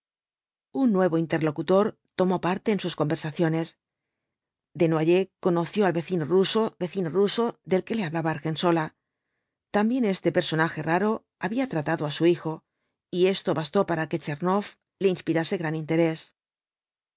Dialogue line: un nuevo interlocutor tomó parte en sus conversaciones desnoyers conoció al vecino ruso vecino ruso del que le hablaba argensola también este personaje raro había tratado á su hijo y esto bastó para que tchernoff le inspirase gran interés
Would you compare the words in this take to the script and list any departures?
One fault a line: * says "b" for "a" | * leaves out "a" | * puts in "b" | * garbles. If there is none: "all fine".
all fine